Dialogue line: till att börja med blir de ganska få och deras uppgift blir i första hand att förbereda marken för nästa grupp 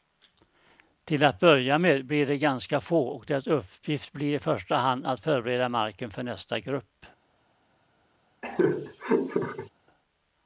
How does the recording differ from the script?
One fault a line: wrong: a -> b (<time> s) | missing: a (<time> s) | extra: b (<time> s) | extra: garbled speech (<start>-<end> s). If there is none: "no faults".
no faults